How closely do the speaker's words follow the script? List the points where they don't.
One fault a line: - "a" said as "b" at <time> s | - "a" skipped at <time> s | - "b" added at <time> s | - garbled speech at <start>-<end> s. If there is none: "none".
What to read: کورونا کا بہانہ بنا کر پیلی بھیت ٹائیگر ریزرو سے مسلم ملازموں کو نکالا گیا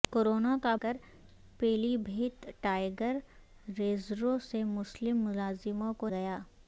- "بہانہ بنا" skipped at 0.8 s
- "نکالا" skipped at 6.1 s